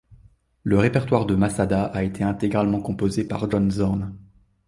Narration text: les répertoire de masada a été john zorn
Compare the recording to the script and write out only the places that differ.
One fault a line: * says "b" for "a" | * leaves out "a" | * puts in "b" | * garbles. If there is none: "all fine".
* says "le" for "les"
* puts in "intégralement composé par"